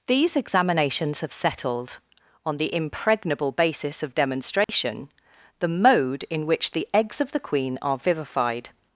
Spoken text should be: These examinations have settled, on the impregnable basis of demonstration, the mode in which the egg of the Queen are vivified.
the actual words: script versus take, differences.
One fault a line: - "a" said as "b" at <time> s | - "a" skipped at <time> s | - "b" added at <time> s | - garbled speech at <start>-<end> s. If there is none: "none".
- "egg" said as "eggs" at 6.9 s